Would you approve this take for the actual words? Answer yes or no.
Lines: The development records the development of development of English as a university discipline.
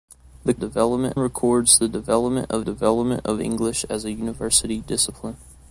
yes